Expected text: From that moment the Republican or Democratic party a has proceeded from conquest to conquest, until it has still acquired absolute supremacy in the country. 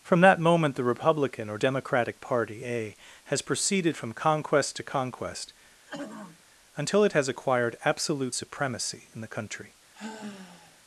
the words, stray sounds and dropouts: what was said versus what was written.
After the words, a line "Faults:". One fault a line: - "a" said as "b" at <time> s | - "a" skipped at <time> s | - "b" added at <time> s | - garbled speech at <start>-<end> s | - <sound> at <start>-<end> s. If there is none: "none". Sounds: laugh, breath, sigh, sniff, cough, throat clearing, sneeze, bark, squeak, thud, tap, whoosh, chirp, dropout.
From that moment the Republican or Democratic party a has proceeded from conquest to conquest, until it has acquired absolute supremacy in the country.
Faults:
- throat clearing at 5.9-6.4 s
- "still" skipped at 7.3 s
- sigh at 9.9-10.8 s